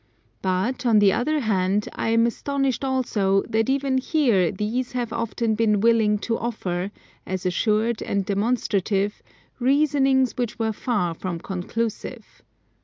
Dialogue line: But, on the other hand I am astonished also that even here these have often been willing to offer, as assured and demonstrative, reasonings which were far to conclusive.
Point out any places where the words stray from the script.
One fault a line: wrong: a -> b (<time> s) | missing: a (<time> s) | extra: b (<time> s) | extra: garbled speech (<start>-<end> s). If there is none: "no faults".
wrong: to -> from (11.1 s)